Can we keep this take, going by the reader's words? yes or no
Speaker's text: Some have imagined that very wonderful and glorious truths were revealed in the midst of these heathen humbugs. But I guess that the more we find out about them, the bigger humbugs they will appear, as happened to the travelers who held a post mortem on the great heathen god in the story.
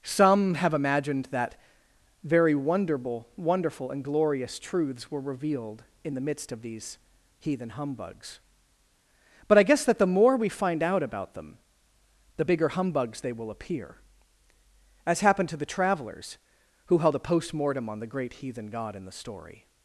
no